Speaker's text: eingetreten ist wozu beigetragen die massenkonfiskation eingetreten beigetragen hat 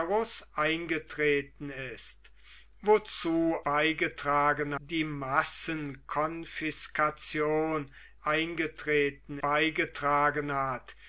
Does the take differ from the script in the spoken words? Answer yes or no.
no